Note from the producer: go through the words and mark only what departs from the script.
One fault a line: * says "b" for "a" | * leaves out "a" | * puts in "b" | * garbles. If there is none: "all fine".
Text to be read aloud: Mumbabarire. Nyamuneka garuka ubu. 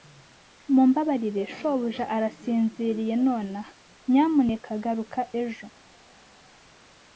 * puts in "shobuja arasinziriye nonaha"
* says "ejo" for "ubu"